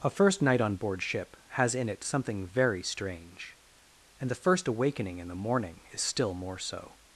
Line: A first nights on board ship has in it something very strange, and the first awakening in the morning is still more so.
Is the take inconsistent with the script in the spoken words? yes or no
yes